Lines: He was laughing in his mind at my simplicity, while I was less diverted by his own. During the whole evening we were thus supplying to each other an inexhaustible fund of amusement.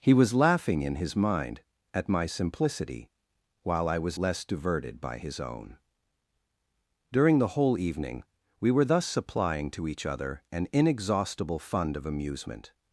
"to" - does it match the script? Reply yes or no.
yes